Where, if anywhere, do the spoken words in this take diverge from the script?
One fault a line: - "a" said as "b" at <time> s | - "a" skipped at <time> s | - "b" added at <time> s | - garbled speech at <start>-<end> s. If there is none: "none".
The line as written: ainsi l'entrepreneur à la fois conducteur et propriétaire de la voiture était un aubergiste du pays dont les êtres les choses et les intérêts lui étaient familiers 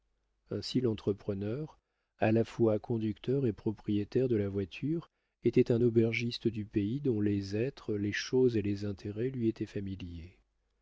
none